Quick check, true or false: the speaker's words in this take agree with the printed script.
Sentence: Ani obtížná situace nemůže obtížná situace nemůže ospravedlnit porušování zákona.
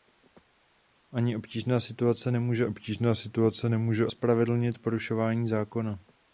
true